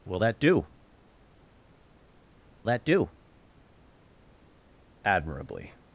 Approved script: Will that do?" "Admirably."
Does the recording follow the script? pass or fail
fail